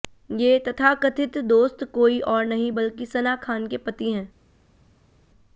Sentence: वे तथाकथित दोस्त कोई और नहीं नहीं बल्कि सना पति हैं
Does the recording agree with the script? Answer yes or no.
no